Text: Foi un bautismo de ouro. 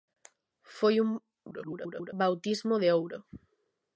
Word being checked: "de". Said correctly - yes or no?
yes